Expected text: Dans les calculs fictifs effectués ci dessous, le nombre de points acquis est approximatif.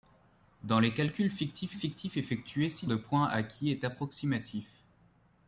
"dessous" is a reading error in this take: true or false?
true